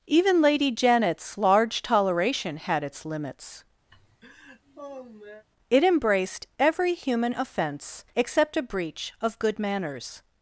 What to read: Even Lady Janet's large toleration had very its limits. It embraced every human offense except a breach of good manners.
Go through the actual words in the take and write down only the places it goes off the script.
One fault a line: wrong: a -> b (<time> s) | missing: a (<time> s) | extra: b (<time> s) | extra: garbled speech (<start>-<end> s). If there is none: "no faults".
missing: very (2.8 s)